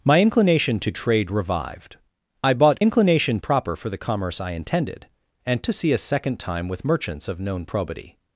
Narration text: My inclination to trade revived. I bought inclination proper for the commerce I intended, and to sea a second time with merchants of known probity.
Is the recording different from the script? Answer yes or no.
no